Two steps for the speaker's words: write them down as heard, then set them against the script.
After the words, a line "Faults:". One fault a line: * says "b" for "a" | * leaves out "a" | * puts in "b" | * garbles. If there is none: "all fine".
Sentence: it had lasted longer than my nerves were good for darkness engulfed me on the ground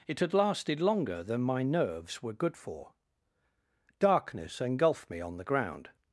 it had lasted longer than my nerves were good for darkness engulfed me on the ground
Faults:
all fine